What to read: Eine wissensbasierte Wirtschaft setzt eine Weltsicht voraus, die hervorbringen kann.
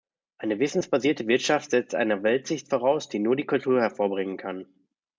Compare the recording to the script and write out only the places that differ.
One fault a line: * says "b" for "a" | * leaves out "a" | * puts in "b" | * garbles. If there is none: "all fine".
* puts in "nur die Kultur"